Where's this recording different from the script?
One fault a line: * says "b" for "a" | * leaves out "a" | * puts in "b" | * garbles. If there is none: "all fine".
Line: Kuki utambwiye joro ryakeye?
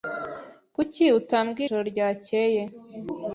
all fine